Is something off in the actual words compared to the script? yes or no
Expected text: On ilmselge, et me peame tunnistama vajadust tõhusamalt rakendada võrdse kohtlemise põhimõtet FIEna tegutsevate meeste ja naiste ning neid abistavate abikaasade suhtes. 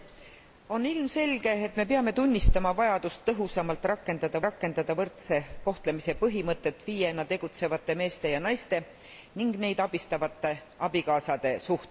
yes